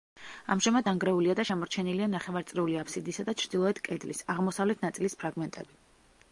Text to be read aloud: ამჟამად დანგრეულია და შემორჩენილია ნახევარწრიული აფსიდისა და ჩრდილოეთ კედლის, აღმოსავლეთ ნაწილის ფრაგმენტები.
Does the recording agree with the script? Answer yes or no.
yes